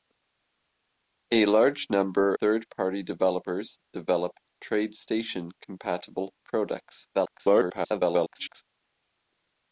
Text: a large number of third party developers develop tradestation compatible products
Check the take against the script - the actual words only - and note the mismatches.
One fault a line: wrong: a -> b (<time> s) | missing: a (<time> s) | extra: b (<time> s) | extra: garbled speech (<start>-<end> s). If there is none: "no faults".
missing: of (2.3 s)
extra: garbled speech (7.1-8.6 s)